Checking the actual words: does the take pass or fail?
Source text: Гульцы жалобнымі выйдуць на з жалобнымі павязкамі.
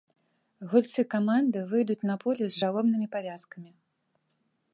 fail